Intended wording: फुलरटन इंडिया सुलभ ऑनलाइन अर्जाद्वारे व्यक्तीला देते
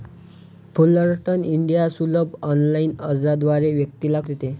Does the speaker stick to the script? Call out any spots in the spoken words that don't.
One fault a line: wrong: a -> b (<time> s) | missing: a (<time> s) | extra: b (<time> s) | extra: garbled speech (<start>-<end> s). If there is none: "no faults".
no faults